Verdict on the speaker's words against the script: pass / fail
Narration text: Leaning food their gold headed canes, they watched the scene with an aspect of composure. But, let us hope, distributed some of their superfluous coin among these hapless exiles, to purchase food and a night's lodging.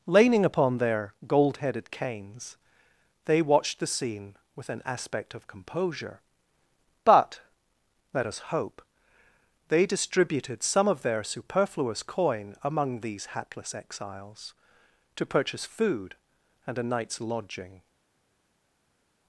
fail